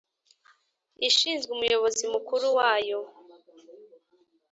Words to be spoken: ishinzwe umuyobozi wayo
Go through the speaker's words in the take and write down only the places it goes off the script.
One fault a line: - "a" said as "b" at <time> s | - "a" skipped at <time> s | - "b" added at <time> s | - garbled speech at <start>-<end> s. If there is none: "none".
- "mukuru" added at 2.1 s